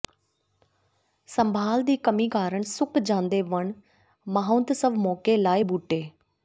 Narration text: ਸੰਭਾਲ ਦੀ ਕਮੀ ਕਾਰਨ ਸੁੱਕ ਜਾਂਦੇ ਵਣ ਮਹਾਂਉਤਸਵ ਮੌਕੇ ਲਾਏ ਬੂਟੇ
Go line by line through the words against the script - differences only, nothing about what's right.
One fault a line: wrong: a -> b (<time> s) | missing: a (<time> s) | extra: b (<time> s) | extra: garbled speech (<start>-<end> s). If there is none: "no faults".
no faults